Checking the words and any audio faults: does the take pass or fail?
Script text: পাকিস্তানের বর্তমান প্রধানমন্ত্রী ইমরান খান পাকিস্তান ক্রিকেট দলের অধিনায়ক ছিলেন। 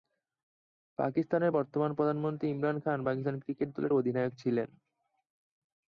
pass